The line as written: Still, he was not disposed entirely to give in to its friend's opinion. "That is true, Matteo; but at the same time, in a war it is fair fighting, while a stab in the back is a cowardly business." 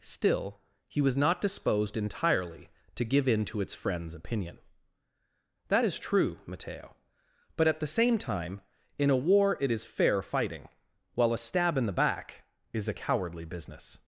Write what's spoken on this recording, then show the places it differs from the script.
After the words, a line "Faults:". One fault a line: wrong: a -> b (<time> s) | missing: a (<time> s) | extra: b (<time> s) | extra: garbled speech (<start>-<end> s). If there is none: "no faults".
Still, he was not disposed entirely to give in to its friend's opinion. "That is true, Matteo; but at the same time, in a war it is fair fighting, while a stab in the back is a cowardly business."
Faults:
no faults